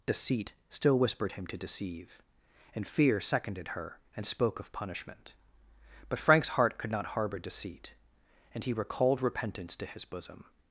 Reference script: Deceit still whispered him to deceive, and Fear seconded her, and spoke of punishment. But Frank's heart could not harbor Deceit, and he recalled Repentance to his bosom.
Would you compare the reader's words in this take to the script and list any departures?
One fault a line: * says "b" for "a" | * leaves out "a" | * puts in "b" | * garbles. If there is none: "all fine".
all fine